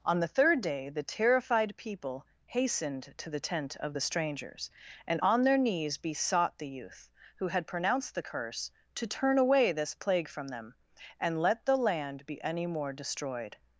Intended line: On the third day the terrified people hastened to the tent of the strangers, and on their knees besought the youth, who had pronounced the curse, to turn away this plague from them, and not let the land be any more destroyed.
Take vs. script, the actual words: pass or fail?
fail